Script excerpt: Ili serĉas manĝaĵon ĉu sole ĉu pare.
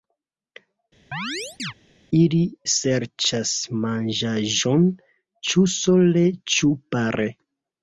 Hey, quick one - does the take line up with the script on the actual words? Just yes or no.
yes